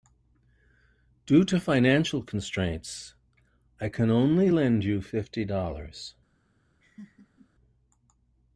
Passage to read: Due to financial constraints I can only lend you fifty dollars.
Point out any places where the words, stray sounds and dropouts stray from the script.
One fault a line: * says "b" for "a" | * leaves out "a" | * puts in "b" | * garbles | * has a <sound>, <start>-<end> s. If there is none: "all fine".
* has a laugh, 6.8-7.5 s